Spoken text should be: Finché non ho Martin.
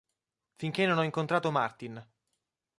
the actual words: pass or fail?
fail